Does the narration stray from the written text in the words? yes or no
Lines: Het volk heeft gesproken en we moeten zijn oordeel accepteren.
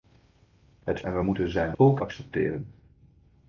yes